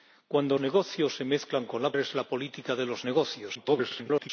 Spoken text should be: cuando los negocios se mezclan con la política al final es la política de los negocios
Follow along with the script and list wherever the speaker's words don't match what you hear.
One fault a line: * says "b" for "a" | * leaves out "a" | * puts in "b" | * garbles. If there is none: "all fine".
* leaves out "los"
* leaves out "política al final"
* garbles